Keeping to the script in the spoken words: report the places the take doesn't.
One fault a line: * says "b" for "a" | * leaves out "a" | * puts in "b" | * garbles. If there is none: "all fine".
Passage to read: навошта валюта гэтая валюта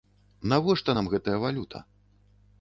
* says "нам" for "валюта"